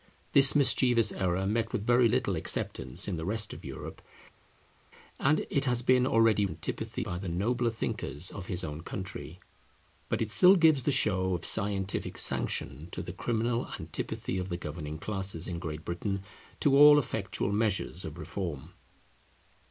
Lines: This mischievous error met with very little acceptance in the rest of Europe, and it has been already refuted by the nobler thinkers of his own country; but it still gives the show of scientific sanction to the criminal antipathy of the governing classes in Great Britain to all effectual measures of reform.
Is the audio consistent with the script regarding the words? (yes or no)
no